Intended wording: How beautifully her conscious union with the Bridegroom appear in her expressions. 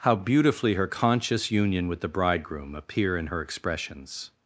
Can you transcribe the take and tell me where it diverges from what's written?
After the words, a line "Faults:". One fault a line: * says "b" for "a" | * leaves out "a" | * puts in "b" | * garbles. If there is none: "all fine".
How beautifully her conscious union with the Bridegroom appear in her expressions.
Faults:
all fine